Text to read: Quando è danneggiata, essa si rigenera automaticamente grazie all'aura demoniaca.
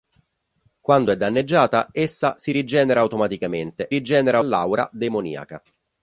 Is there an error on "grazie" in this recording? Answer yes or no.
yes